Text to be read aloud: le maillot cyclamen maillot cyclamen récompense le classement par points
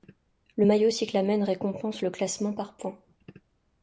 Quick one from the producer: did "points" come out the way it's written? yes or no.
yes